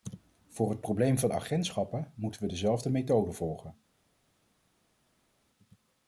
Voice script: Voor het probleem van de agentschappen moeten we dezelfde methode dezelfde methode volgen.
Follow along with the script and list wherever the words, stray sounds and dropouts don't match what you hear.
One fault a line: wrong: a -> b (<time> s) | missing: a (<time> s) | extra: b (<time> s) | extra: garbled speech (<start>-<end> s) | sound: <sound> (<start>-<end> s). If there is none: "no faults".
missing: dezelfde methode (3.3 s)